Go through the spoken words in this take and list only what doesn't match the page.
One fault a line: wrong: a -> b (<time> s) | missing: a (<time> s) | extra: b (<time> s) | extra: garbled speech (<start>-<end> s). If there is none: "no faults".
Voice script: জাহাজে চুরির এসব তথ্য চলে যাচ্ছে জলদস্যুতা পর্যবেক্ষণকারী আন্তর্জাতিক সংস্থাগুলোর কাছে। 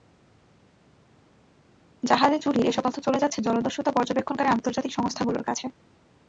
no faults